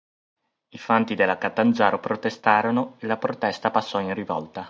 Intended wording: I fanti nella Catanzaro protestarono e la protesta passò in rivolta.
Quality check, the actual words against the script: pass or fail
fail